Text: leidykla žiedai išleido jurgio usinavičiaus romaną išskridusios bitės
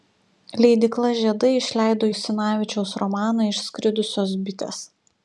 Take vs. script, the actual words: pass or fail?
fail